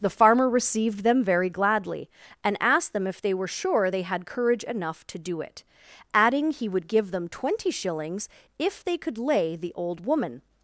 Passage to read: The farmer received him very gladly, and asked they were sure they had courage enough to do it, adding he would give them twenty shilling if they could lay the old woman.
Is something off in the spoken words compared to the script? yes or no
yes